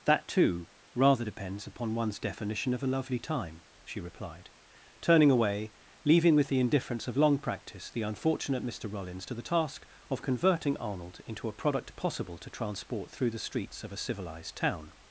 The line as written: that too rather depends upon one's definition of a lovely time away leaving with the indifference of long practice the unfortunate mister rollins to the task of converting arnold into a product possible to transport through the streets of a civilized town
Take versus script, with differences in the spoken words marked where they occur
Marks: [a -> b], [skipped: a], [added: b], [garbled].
that too rather depends upon one's definition of a lovely time [added: she replied turning] away leaving with the indifference of long practice the unfortunate mister rollins to the task of converting arnold into a product possible to transport through the streets of a civilized town